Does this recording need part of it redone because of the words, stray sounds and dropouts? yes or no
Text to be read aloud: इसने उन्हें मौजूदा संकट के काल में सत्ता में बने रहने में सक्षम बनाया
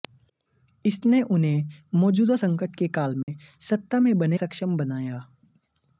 yes